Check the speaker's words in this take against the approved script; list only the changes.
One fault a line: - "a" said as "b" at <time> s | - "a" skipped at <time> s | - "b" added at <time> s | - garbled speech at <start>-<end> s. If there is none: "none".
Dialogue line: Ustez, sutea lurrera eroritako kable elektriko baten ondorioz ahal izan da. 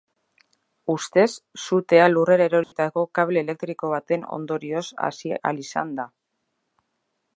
- "hasi" added at 5.1 s